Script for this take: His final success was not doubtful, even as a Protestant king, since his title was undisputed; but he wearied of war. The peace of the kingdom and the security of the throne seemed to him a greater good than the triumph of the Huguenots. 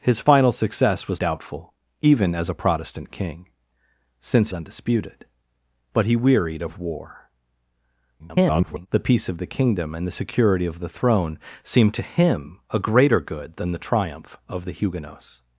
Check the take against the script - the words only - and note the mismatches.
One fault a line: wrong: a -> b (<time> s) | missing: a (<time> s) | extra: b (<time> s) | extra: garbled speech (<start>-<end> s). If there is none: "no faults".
missing: not (1.2 s)
missing: his title was (4.5 s)
extra: garbled speech (8.2-8.9 s)